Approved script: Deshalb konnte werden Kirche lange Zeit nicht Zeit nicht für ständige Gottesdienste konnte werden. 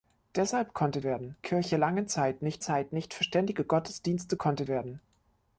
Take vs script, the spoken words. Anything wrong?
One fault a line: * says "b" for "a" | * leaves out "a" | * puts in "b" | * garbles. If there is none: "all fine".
all fine